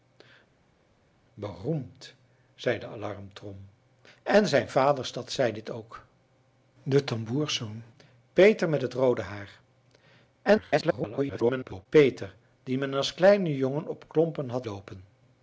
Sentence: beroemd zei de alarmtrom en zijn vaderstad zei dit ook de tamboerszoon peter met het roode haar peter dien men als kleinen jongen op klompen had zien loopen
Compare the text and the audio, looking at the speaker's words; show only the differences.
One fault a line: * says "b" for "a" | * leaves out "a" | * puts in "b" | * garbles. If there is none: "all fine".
* garbles
* leaves out "zien"